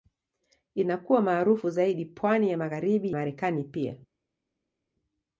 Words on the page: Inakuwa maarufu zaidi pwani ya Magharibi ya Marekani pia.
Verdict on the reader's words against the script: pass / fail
fail